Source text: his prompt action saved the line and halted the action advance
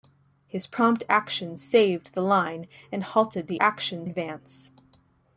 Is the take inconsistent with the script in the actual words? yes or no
no